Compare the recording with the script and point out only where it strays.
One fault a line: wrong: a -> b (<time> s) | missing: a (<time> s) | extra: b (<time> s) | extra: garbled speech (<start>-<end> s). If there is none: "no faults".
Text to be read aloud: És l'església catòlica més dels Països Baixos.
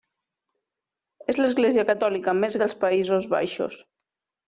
no faults